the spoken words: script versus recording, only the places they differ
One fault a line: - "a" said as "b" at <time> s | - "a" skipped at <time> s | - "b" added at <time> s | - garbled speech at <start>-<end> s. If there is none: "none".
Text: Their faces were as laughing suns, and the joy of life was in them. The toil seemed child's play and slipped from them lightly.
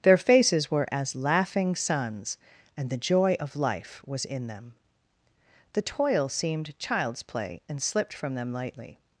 none